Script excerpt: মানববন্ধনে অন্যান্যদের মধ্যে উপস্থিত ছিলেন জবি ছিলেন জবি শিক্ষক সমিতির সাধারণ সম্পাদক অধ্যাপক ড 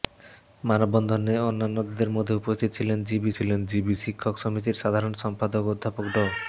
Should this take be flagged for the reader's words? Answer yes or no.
no